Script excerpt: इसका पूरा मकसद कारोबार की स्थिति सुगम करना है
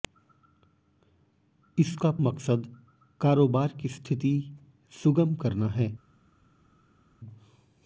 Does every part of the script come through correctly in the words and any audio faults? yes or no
no